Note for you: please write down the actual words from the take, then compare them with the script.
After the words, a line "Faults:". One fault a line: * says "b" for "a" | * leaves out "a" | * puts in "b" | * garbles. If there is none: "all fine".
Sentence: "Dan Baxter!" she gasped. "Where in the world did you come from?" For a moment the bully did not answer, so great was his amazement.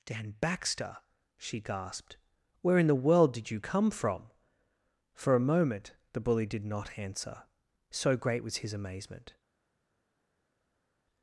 "Dan Baxter!" she gasped. "Where in the world did you come from?" For a moment the bully did not answer, so great was his amazement.
Faults:
all fine